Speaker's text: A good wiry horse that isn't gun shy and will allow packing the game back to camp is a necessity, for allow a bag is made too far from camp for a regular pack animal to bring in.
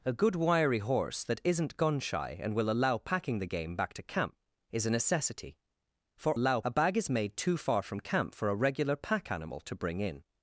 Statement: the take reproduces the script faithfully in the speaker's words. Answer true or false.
true